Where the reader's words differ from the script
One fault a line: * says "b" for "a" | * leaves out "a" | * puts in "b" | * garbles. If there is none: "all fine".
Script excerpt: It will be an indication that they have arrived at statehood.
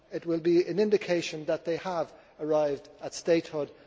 all fine